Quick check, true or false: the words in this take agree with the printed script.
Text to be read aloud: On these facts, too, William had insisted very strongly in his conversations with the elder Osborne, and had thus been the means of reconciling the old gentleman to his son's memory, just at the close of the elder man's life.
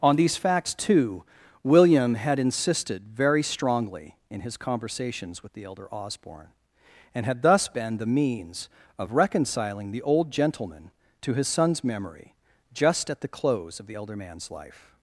true